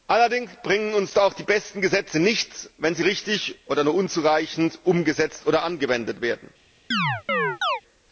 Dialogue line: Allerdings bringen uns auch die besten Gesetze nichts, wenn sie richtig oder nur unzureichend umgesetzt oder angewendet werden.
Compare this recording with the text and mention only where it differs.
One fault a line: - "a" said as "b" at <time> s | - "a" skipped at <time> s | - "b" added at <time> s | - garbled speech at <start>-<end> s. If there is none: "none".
none